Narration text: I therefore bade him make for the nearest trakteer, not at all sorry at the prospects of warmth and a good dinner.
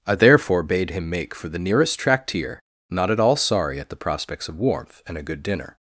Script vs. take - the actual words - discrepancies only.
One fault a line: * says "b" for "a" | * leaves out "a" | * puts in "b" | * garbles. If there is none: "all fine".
all fine